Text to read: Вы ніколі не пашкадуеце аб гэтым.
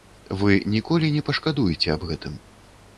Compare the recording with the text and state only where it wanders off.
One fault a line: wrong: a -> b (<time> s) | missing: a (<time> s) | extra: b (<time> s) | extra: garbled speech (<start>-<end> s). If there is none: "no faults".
no faults